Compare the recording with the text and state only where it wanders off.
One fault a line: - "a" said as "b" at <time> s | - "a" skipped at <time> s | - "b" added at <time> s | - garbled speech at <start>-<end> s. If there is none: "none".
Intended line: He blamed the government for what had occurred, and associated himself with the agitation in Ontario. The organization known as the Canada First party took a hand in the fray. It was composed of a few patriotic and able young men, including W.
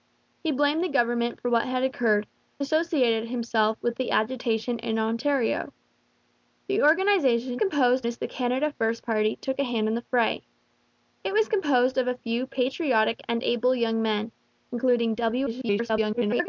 - "and" skipped at 2.2 s
- "known" said as "composed" at 7.6 s
- garbled speech at 15.5-16.5 s